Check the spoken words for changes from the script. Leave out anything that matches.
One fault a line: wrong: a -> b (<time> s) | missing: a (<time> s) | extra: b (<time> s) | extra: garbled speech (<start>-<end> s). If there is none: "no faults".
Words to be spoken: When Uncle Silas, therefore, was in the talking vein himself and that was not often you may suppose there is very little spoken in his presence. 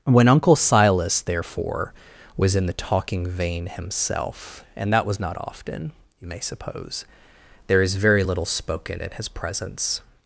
no faults